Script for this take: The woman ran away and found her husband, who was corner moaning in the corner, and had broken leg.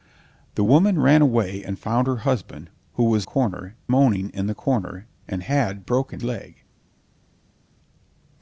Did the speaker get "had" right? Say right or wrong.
right